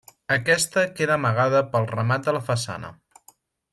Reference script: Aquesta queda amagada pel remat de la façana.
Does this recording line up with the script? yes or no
yes